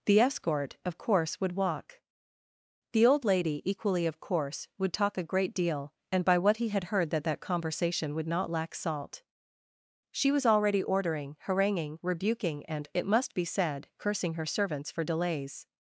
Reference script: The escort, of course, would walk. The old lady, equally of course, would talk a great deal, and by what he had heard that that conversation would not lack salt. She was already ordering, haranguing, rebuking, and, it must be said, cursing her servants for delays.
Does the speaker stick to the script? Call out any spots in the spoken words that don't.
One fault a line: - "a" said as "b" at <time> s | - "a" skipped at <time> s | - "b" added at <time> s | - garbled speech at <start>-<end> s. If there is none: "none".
none